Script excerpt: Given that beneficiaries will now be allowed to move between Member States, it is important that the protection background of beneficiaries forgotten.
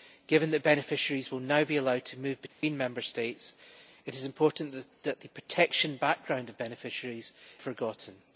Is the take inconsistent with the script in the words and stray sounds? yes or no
yes